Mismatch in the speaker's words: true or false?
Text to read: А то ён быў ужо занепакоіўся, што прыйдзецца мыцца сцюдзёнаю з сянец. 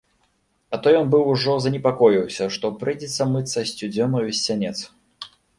false